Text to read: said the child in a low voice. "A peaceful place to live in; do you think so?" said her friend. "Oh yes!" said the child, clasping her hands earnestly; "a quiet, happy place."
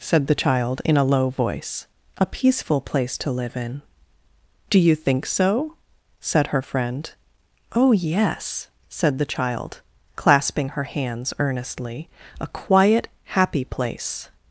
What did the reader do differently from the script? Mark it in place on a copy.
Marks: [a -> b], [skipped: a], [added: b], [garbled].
said the child in a low voice. "A peaceful place to live in; do you think so?" said her friend. "Oh yes!" said the child, clasping her hands earnestly; "a quiet, happy place."